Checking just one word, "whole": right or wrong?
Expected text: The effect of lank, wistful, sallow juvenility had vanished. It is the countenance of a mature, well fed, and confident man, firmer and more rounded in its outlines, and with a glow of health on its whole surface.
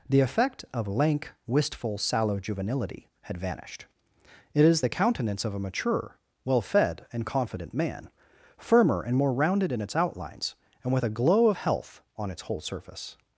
right